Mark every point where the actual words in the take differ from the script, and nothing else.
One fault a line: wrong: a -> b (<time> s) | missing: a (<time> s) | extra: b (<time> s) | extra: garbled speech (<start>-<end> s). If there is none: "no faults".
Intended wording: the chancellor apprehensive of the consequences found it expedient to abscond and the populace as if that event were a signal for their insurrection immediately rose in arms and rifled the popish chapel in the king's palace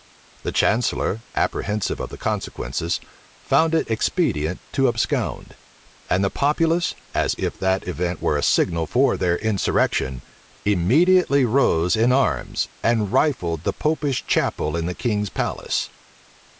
no faults